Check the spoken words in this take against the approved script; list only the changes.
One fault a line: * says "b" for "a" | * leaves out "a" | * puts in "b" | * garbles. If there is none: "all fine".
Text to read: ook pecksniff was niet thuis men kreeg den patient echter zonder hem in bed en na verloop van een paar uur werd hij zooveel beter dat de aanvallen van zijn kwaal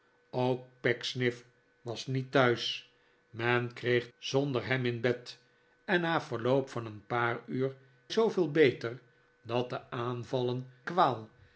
* leaves out "den patient echter"
* leaves out "werd hij"
* leaves out "van zijn"